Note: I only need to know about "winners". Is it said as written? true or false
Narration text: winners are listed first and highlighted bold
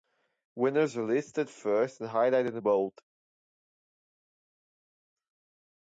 true